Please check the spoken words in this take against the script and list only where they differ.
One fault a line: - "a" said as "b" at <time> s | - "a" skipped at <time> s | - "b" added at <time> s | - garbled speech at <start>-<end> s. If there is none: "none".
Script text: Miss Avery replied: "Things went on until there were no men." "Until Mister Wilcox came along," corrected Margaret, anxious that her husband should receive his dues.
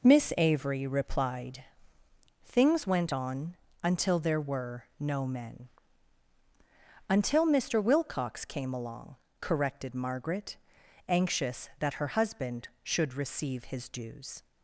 none